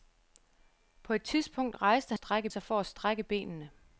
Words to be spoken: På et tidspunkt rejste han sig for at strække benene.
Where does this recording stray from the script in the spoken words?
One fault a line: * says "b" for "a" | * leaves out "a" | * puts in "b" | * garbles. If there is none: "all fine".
* says "strække" for "han"